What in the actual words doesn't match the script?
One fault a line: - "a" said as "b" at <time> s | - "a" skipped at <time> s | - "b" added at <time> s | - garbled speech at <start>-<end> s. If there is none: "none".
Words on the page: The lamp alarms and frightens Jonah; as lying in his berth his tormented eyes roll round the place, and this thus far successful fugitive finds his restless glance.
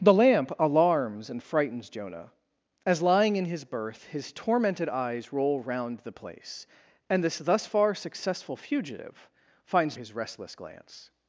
none